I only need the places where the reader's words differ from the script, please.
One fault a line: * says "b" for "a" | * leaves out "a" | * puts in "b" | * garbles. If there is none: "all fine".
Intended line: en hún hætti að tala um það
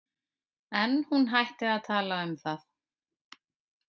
all fine